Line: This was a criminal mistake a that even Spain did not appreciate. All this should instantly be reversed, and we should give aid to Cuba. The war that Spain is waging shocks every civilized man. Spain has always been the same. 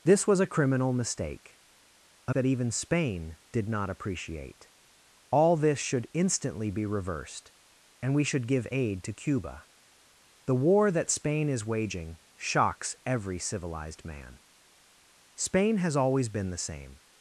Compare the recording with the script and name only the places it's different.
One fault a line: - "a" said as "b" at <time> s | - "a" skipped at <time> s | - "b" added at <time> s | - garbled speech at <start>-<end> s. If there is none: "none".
none